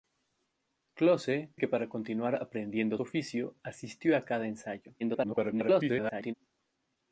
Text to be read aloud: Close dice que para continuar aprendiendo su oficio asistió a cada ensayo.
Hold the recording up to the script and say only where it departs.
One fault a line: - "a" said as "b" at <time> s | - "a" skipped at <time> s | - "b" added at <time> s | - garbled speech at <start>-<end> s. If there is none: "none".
- "dice" skipped at 1.5 s
- "su" skipped at 3.0 s
- garbled speech at 5.0-6.3 s